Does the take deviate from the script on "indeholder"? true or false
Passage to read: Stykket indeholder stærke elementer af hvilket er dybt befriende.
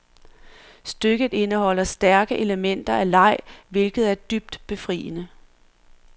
false